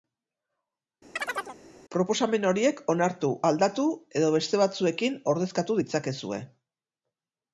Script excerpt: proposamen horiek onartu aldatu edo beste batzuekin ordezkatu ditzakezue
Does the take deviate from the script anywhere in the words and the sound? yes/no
yes